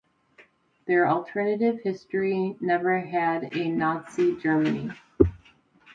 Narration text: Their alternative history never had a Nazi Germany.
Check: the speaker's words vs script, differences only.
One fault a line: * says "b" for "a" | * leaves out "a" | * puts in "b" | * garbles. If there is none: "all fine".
all fine